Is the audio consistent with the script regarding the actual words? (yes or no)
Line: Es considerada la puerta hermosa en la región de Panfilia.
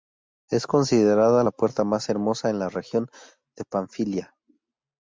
no